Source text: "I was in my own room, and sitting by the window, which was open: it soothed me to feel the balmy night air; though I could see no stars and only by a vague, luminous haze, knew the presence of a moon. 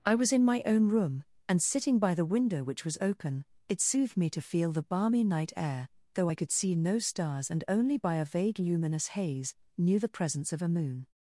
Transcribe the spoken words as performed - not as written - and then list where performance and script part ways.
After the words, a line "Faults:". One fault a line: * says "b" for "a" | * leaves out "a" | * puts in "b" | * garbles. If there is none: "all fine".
"I was in my own room, and sitting by the window, which was open: it soothed me to feel the balmy night air; though I could see no stars and only by a vague, luminous haze, knew the presence of a moon.
Faults:
all fine